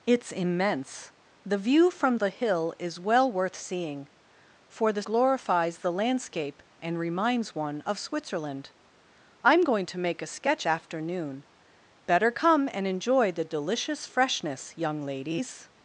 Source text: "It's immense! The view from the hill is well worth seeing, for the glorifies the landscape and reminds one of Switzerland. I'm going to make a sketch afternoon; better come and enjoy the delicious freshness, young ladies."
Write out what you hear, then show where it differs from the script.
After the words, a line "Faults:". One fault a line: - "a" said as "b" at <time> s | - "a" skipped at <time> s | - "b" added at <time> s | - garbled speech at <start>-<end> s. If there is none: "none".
"It's immense! The view from the hill is well worth seeing, for the glorifies the landscape and reminds one of Switzerland. I'm going to make a sketch afternoon; better come and enjoy the delicious freshness, young ladies."
Faults:
none